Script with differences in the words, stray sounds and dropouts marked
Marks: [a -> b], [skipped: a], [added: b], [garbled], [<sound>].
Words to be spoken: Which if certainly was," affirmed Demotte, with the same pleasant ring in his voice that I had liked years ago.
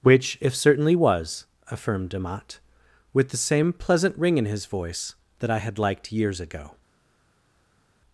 Which if certainly was," affirmed Demotte, with the same pleasant ring in his voice that I had liked years ago.